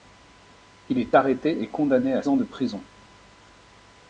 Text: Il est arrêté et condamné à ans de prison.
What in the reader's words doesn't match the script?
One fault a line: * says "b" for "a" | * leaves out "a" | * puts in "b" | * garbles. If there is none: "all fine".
all fine